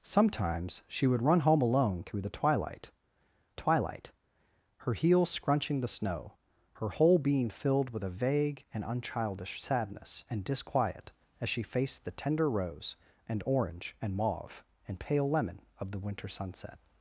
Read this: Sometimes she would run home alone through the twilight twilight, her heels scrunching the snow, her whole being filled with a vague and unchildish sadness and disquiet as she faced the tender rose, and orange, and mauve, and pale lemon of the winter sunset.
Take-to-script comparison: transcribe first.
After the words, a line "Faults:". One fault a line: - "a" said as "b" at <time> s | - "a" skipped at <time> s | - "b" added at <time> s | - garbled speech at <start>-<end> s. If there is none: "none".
Sometimes she would run home alone through the twilight twilight, her heels scrunching the snow, her whole being filled with a vague and unchildish sadness and disquiet as she faced the tender rose, and orange, and mauve, and pale lemon of the winter sunset.
Faults:
none